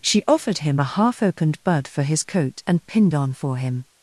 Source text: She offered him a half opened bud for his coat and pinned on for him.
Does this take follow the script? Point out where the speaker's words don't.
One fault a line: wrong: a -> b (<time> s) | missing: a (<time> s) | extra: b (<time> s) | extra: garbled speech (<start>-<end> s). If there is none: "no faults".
no faults